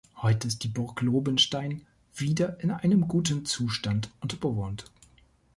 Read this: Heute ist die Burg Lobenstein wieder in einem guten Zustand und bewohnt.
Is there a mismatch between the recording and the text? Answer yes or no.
no